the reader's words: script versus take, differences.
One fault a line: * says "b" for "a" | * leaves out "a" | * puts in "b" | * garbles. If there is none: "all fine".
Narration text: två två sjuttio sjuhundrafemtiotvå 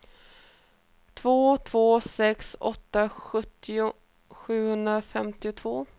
* puts in "sex åtta"